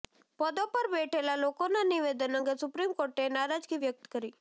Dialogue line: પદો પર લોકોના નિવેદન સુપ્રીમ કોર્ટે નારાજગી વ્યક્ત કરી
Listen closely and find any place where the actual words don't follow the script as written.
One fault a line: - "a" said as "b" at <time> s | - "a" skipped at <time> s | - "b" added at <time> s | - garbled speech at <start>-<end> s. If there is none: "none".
- "બેઠેલા" added at 0.9 s
- "અંગે" added at 2.3 s